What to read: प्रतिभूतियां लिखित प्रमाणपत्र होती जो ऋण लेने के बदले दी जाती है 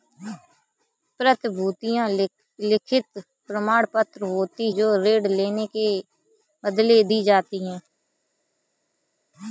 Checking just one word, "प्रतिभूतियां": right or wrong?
right